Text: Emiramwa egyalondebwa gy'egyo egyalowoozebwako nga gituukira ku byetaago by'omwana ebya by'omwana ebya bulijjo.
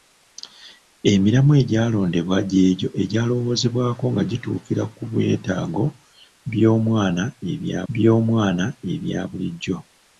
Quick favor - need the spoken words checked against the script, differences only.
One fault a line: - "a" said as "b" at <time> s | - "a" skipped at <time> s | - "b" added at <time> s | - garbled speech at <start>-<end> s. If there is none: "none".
none